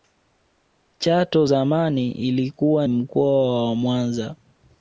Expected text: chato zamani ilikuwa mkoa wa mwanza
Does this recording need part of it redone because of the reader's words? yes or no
no